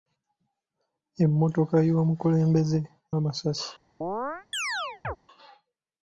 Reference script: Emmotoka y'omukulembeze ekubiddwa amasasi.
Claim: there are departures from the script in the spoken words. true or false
true